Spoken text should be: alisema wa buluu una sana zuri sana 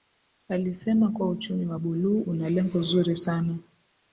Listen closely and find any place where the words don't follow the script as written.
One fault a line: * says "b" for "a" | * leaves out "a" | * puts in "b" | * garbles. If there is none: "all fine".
* puts in "kuwa uchumi"
* says "lengo" for "sana"